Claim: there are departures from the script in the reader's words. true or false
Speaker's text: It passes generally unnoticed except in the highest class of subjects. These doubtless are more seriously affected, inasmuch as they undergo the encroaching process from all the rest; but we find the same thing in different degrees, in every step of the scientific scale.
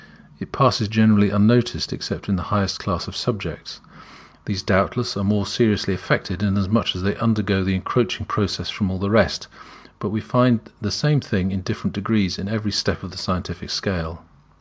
false